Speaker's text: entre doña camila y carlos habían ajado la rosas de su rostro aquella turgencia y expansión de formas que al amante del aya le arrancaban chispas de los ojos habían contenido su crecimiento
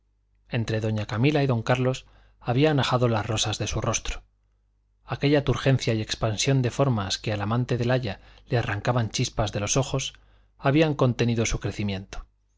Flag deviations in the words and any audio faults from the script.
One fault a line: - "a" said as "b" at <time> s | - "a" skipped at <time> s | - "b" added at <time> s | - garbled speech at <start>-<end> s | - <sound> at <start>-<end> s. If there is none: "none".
- "don" added at 1.5 s
- "la" said as "las" at 3.1 s